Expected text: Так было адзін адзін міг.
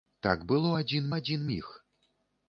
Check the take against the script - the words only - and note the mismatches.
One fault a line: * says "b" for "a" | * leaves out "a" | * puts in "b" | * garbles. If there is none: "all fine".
all fine